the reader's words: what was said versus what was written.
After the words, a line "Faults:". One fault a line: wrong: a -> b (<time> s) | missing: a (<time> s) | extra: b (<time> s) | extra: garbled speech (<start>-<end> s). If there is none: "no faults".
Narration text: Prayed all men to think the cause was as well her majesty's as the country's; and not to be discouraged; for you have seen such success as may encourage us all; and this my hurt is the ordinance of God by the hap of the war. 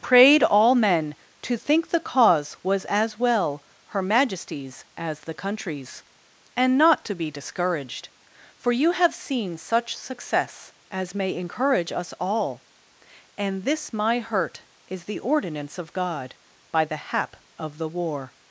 Prayed all men to think the cause was as well her majesty's as the country's; and not to be discouraged; for you have seen such success as may encourage us all; and this my hurt is the ordinance of God by the hap of the war.
Faults:
no faults